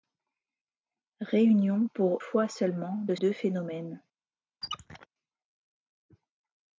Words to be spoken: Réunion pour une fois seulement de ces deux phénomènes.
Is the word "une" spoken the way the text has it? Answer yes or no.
no